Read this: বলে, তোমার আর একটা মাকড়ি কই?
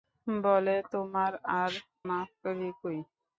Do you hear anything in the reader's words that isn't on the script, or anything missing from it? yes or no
yes